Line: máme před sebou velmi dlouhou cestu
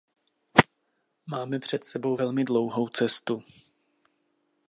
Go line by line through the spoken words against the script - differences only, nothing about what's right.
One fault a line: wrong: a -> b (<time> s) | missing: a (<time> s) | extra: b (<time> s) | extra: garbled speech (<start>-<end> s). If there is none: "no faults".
no faults